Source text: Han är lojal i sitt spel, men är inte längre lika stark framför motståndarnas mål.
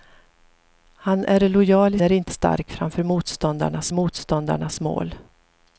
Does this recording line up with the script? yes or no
no